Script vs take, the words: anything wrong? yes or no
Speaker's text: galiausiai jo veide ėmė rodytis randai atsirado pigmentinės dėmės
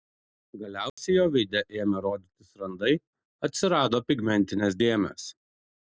no